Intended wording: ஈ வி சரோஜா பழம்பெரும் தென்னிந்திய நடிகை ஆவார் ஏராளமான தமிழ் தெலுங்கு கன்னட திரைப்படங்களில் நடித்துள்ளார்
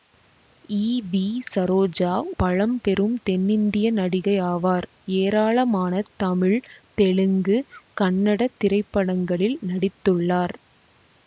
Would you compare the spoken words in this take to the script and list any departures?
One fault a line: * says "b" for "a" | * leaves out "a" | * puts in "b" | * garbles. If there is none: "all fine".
all fine